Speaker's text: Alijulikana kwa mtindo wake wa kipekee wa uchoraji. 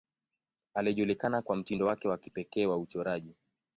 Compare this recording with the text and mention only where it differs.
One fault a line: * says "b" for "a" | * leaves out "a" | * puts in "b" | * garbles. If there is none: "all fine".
all fine